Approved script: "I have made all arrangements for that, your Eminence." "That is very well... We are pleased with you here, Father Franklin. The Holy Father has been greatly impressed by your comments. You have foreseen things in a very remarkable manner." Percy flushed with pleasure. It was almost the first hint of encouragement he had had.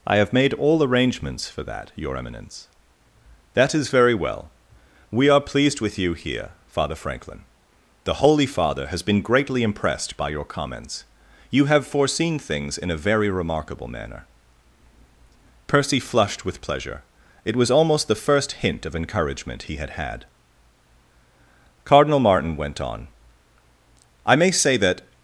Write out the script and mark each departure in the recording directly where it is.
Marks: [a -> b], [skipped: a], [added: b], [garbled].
"I have made all arrangements for that, your Eminence." "That is very well... We are pleased with you here, Father Franklin. The Holy Father has been greatly impressed by your comments. You have foreseen things in a very remarkable manner." Percy flushed with pleasure. It was almost the first hint of encouragement he had had. [added: Cardinal Martin went on I may say that]